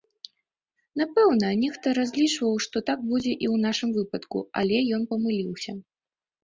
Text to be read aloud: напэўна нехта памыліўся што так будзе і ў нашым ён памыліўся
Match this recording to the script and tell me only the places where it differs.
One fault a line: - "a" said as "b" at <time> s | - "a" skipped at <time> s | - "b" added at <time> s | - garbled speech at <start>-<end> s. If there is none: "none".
- "памыліўся" said as "разлічваў" at 2.0 s
- "выпадку але" added at 4.0 s